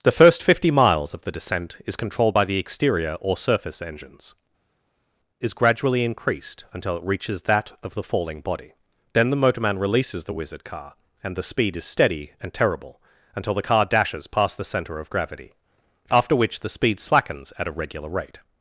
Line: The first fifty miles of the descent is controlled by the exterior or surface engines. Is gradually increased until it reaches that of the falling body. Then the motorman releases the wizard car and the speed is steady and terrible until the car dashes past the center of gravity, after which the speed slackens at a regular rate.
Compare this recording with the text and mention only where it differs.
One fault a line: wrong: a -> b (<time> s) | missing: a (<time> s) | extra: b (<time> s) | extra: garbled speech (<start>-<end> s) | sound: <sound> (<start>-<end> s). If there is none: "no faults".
no faults